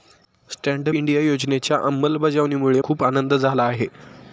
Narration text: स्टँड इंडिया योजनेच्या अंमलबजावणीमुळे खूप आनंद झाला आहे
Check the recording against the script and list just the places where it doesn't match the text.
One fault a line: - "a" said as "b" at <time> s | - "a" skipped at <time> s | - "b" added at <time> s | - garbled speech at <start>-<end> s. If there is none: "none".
none